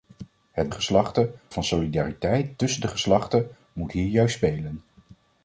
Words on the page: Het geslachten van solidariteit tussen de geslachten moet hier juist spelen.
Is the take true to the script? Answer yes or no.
yes